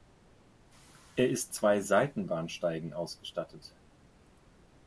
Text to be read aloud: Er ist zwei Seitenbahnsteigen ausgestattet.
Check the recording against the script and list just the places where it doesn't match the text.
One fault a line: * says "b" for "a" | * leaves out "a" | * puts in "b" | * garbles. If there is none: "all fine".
all fine